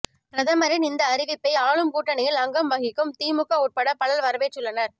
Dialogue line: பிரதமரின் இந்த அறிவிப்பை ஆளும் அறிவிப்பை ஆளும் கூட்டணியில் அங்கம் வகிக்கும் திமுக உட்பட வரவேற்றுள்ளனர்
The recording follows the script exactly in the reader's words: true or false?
false